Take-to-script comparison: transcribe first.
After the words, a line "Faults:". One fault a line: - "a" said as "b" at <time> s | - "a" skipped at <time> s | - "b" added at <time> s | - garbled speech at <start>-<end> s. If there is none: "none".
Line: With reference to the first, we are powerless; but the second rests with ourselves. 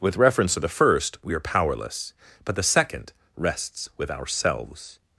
With reference to the first, we are powerless; but the second rests with ourselves.
Faults:
none